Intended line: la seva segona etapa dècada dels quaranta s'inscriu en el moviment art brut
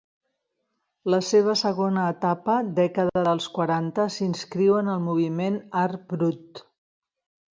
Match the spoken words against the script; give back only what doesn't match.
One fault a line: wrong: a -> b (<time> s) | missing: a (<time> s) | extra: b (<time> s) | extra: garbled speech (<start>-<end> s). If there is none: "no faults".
no faults